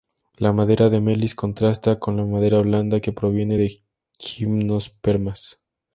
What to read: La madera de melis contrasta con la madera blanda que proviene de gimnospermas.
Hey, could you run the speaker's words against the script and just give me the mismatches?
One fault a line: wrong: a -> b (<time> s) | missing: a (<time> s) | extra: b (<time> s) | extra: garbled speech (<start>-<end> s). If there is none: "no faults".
no faults